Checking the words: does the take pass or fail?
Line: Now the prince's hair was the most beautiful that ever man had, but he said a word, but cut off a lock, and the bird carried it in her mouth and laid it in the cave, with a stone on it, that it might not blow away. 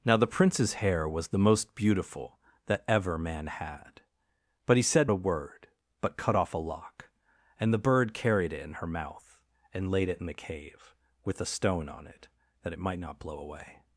pass